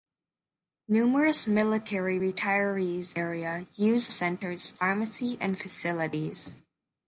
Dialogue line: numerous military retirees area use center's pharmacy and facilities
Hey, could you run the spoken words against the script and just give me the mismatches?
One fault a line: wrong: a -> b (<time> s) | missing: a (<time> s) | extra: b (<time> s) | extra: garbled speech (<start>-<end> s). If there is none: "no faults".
no faults